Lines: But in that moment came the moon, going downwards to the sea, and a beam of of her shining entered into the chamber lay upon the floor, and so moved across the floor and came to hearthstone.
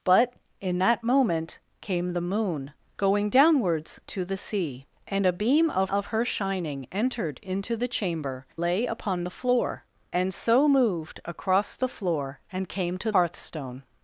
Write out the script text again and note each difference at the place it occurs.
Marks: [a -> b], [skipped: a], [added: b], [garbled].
But in that moment came the moon, going downwards to the sea, and a beam of of her shining entered into the chamber lay upon the floor, and so moved across the floor and came to hearthstone.